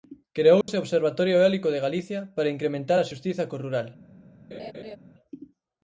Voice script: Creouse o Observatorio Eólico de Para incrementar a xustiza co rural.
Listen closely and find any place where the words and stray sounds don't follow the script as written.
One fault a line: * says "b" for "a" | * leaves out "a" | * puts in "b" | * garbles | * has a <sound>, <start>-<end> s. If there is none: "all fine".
* has a dropout, 0.6-0.7 s
* puts in "Galicia"
* has a laugh, 4.5-5.0 s